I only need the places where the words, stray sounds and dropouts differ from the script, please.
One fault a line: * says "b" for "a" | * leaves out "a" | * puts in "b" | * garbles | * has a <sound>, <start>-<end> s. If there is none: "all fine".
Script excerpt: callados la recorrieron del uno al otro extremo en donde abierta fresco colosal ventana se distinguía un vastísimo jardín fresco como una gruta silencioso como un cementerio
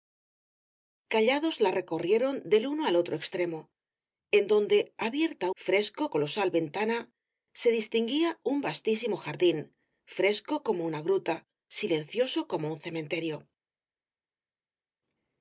all fine